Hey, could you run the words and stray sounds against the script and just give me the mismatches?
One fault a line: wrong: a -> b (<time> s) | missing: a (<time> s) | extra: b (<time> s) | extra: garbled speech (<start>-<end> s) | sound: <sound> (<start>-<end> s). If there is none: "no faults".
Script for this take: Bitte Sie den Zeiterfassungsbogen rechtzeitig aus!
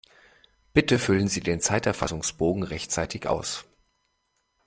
extra: füllen (1.0 s)